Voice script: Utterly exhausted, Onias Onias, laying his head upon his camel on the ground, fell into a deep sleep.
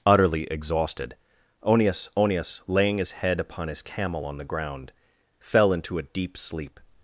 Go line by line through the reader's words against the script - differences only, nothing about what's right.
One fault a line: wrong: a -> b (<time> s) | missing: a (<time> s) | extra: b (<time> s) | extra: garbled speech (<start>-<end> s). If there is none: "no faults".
no faults